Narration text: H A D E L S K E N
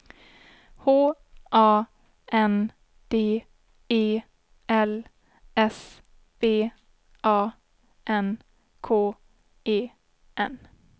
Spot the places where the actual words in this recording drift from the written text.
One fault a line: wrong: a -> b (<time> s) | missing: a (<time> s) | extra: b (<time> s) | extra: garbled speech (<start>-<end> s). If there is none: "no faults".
extra: N (2.3 s)
extra: B A N (6.4 s)